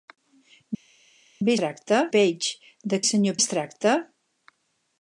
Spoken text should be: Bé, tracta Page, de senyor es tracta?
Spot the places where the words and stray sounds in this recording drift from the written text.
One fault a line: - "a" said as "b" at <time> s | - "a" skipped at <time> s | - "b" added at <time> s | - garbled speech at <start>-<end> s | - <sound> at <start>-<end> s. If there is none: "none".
none